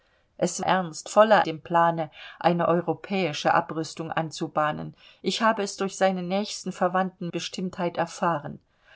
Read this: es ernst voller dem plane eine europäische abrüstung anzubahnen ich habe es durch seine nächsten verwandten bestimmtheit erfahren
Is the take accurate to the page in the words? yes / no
yes